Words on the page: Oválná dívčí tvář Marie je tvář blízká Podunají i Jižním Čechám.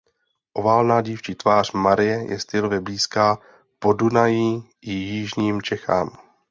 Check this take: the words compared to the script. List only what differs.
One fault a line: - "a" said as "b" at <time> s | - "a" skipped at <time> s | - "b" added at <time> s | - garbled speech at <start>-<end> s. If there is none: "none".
- "tvář" said as "stylově" at 2.4 s